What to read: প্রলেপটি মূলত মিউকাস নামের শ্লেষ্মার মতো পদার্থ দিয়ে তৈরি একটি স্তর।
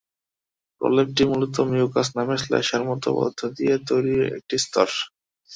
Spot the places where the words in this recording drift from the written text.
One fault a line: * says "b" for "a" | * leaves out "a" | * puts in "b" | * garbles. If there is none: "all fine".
all fine